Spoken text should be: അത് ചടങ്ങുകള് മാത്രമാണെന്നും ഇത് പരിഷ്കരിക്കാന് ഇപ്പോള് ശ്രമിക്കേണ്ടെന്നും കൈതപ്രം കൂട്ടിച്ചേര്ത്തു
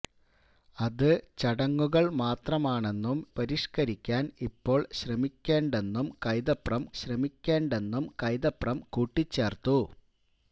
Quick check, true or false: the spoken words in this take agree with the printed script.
false